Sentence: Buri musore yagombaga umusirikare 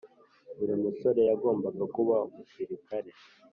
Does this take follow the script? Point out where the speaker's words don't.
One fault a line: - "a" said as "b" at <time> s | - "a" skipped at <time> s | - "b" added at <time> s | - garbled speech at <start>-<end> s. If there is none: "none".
- "kuba" added at 1.9 s